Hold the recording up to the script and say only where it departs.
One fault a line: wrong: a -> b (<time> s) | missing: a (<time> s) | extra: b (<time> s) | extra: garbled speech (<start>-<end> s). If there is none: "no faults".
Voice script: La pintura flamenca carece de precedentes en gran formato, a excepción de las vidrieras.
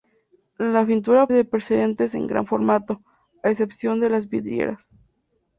missing: flamenca carece (1.3 s)